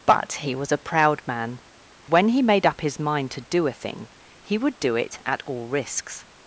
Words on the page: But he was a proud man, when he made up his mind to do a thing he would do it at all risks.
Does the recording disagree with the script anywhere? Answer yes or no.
no